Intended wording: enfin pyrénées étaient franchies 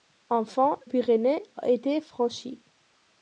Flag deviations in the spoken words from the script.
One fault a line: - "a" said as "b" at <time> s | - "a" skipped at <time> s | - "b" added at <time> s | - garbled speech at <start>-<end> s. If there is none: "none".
none